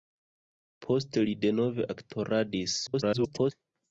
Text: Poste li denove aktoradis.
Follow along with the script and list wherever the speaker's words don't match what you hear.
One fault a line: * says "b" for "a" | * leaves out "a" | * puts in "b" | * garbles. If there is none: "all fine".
* garbles